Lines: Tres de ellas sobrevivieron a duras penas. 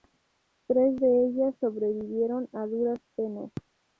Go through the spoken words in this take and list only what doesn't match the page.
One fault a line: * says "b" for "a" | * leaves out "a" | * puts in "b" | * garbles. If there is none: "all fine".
all fine